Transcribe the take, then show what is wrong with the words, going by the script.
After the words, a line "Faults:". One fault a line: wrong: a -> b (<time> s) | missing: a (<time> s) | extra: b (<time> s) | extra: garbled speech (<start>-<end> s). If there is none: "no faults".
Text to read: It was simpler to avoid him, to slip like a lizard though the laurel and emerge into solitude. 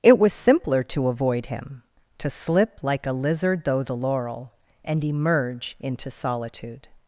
It was simpler to avoid him, to slip like a lizard though the laurel and emerge into solitude.
Faults:
no faults